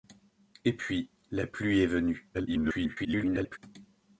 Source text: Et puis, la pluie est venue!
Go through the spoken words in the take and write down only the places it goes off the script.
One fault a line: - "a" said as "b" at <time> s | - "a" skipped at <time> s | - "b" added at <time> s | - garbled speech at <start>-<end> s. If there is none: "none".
- garbled speech at 2.3-3.6 s